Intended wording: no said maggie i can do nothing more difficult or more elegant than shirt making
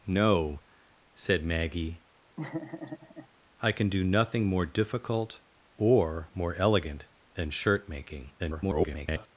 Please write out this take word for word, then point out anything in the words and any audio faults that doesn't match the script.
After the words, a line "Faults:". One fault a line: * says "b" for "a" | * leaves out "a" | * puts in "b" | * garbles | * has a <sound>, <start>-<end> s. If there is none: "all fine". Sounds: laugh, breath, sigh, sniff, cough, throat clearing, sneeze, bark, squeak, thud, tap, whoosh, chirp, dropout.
no said maggie i can do nothing more difficult or more elegant than shirt making [garbled]
Faults:
* has a laugh, 2.4-3.3 s
* garbles